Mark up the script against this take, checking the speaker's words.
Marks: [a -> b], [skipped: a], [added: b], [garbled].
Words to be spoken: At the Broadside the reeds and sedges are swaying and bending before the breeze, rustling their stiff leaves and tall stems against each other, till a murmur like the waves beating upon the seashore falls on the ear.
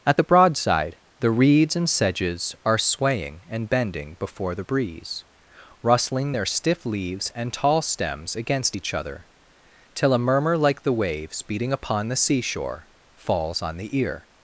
At the Broadside the reeds and sedges are swaying and bending before the breeze, rustling their stiff leaves and tall stems against each other, till a murmur like the waves beating upon the seashore falls on the ear.